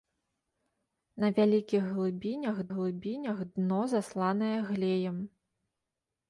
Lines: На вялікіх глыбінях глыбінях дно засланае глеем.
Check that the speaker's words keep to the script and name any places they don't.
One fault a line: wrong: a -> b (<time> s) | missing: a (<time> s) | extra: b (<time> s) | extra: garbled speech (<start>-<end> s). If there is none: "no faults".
no faults